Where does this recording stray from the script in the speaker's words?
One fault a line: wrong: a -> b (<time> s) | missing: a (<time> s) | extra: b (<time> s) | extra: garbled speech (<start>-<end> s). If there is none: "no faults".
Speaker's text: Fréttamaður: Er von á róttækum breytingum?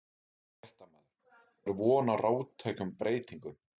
no faults